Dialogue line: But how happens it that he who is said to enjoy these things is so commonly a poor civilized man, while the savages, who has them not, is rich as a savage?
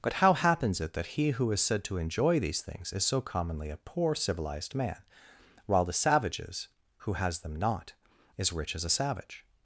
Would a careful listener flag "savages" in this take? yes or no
no